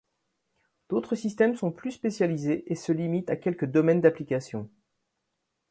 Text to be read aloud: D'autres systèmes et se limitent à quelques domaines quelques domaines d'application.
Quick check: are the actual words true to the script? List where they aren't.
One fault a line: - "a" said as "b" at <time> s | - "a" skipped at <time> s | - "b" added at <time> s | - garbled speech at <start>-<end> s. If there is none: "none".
- "sont plus spécialisés" added at 1.5 s
- "quelques domaines" skipped at 4.0 s